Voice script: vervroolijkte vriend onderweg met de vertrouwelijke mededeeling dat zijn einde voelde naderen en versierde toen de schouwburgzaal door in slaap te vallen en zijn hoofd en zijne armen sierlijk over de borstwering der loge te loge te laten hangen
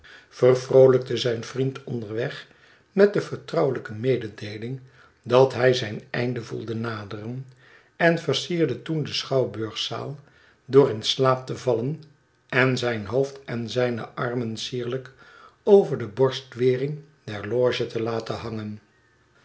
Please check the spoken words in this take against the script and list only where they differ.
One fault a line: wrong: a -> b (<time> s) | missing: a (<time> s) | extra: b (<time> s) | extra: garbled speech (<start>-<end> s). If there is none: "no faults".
extra: zijn (1.2 s)
extra: hij (5.5 s)
missing: loge te (18.0 s)